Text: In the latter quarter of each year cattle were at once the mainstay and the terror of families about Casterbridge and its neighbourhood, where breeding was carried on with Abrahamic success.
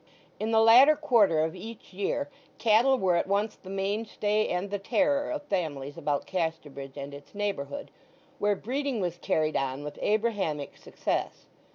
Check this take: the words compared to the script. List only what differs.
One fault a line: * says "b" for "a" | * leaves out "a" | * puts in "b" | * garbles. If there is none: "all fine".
all fine